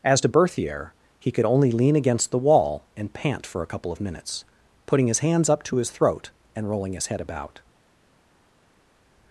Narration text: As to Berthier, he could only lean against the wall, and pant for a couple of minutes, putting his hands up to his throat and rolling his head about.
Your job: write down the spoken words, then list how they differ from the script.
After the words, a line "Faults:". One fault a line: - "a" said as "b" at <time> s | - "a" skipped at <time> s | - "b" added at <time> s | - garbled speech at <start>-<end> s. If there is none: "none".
As to Berthier, he could only lean against the wall, and pant for a couple of minutes, putting his hands up to his throat and rolling his head about.
Faults:
none